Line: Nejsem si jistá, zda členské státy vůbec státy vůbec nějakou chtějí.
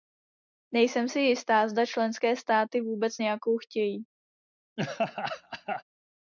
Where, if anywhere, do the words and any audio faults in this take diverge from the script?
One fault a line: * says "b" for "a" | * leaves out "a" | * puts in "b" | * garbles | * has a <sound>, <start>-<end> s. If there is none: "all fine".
* leaves out "státy vůbec"
* has a laugh, 4.8-5.8 s